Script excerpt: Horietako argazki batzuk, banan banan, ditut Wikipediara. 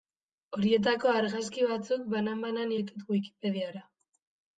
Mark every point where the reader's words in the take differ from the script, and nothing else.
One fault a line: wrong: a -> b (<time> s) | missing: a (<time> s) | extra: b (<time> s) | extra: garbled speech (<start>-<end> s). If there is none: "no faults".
no faults